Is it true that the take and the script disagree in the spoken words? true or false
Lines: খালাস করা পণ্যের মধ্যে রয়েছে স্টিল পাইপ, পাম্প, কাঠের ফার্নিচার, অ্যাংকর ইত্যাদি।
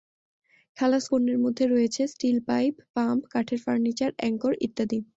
true